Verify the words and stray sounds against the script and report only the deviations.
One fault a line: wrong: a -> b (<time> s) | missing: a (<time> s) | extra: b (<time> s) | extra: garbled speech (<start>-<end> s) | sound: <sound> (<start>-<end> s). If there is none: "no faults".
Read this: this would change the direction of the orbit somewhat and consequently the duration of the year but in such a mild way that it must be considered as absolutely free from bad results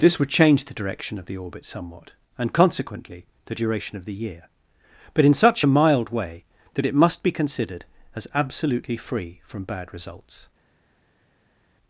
no faults